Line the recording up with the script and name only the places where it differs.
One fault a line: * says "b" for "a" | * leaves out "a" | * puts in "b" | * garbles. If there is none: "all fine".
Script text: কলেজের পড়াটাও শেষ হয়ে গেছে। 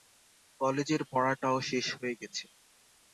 all fine